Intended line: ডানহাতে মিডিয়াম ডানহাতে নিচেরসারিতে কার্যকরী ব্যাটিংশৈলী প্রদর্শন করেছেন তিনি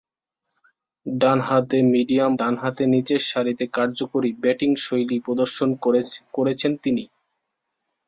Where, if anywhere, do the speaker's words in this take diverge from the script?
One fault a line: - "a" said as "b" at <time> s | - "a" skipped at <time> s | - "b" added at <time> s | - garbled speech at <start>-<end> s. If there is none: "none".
none